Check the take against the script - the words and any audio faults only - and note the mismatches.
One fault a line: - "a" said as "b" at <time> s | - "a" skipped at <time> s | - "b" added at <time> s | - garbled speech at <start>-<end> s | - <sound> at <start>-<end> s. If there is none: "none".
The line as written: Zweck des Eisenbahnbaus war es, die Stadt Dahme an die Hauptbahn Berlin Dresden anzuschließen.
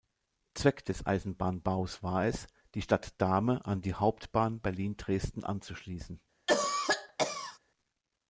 - cough at 6.5-7.6 s